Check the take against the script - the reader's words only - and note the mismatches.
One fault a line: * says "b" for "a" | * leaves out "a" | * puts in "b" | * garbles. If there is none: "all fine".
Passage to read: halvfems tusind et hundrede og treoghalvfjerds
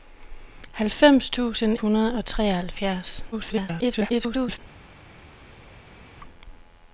* leaves out "et"
* garbles